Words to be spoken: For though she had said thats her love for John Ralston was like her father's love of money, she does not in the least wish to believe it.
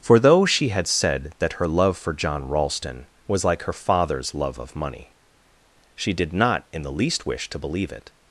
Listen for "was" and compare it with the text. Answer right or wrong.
right